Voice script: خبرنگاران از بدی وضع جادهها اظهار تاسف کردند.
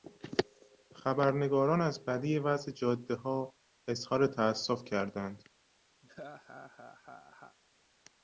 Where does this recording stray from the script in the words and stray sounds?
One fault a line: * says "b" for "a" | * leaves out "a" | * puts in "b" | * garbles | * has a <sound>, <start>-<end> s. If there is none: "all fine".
* has a laugh, 6.0-7.6 s